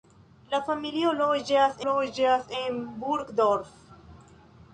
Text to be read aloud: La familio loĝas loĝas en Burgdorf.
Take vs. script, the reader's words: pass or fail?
pass